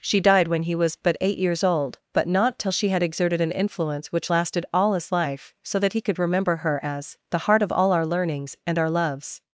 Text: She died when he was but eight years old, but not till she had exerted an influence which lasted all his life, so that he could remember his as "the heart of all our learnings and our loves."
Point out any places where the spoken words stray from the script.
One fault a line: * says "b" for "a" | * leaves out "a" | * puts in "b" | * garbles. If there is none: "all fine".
* says "her" for "his"